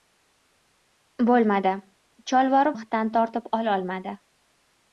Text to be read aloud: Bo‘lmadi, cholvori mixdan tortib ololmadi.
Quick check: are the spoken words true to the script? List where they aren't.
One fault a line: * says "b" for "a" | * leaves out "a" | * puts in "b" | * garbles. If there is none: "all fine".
all fine